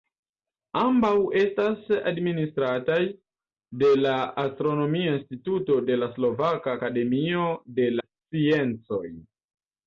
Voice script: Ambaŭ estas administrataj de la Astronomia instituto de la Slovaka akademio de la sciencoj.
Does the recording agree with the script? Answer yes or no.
no